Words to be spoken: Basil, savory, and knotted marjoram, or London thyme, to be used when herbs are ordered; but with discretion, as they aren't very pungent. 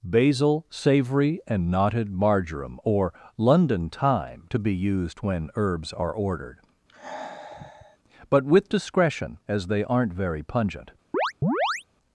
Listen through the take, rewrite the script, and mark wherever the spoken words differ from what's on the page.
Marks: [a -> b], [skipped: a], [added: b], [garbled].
Basil, savory, and knotted marjoram, or London thyme, to be used when herbs are ordered; but with discretion, as they aren't very pungent.